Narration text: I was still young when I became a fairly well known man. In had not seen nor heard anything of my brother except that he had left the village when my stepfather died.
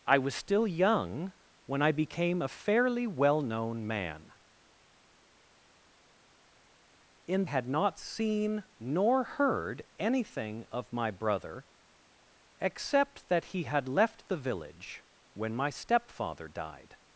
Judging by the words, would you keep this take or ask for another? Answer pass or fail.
pass